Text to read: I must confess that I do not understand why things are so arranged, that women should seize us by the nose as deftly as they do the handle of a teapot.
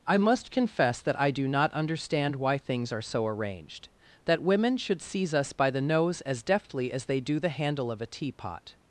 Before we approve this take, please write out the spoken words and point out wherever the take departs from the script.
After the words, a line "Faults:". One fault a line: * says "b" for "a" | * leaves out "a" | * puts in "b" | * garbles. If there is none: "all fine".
I must confess that I do not understand why things are so arranged, that women should seize us by the nose as deftly as they do the handle of a teapot.
Faults:
all fine